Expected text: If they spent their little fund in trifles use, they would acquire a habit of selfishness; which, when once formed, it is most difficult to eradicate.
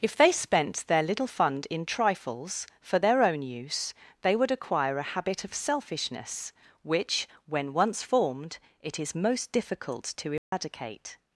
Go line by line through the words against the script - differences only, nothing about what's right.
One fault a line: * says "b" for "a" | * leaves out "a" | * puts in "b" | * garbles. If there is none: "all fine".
* puts in "for their own"